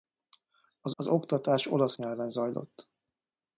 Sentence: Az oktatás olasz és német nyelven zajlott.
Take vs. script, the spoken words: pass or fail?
fail